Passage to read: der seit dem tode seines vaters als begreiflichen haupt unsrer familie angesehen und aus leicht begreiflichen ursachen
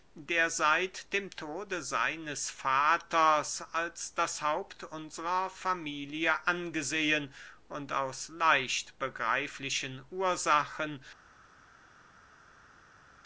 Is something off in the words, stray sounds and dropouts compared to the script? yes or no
yes